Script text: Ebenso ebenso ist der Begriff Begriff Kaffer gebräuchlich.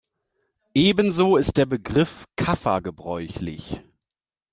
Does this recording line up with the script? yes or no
no